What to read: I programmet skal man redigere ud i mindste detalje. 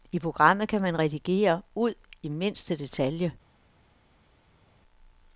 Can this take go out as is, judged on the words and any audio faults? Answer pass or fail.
fail